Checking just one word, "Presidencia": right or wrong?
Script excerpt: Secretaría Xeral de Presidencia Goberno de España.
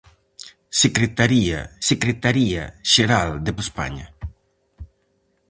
wrong